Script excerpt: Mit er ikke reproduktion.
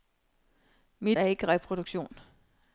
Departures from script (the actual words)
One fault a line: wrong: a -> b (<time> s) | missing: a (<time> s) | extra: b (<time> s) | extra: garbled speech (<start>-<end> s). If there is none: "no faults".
no faults